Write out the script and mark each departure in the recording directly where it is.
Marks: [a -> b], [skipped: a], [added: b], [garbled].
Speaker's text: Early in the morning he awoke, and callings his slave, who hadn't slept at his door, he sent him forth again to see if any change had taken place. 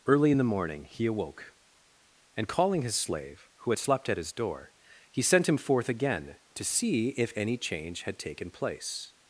Early in the morning he awoke, and [callings -> calling] his slave, who [hadn't -> had] slept at his door, he sent him forth again to see if any change had taken place.